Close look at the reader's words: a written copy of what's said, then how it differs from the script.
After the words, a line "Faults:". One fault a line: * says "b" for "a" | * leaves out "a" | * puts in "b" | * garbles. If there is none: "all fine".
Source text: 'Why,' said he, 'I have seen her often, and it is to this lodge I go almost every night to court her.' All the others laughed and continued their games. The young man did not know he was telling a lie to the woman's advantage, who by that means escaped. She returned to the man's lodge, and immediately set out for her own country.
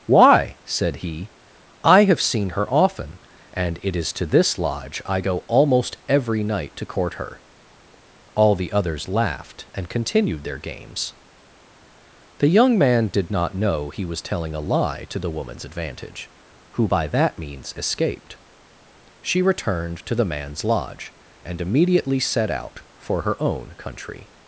'Why,' said he, 'I have seen her often, and it is to this lodge I go almost every night to court her.' All the others laughed and continued their games. The young man did not know he was telling a lie to the woman's advantage, who by that means escaped. She returned to the man's lodge, and immediately set out for her own country.
Faults:
all fine